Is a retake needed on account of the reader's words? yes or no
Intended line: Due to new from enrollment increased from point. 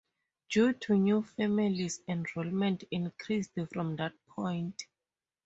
yes